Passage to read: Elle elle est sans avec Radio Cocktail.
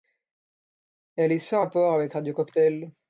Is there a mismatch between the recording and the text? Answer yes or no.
yes